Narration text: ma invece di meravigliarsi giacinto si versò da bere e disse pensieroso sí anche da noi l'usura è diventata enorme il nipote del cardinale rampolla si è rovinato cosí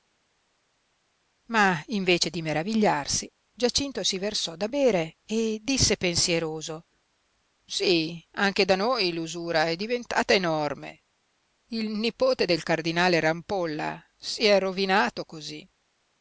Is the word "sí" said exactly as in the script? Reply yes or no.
yes